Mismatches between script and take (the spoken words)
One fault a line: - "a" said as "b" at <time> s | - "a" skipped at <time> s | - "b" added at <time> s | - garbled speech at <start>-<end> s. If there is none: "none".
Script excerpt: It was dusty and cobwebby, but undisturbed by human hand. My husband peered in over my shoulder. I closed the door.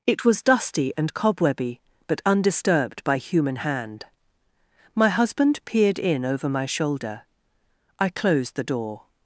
none